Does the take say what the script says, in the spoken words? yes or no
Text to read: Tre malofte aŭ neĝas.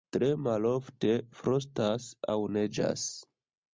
no